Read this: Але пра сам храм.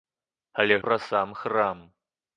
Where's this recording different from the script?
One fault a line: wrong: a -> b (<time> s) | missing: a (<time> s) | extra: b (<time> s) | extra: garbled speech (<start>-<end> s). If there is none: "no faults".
no faults